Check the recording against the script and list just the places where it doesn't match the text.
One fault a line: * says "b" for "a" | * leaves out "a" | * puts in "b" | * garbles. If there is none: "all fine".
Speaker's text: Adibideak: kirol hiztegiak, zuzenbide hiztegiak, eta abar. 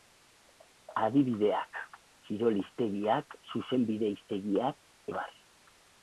* leaves out "eta"